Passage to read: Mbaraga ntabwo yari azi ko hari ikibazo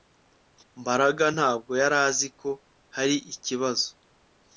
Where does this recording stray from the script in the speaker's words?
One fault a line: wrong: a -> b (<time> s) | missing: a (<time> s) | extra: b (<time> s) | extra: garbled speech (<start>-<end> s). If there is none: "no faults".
no faults